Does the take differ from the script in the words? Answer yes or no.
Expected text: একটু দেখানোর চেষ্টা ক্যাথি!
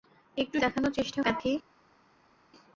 no